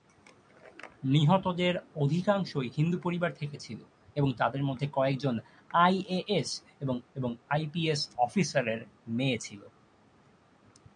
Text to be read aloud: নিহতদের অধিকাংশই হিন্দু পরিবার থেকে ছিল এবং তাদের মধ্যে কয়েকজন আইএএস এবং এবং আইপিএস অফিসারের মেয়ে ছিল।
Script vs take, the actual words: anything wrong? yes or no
no